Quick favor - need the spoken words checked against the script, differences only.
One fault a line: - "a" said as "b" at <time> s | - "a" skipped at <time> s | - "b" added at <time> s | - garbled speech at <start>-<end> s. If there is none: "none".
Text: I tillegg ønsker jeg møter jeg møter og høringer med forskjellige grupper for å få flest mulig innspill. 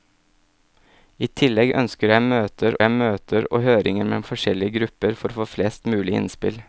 none